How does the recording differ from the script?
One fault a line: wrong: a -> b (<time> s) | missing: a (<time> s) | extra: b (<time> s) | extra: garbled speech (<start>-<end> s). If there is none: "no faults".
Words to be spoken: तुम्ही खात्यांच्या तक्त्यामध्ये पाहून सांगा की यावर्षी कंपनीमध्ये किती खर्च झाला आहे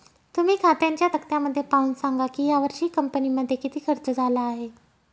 no faults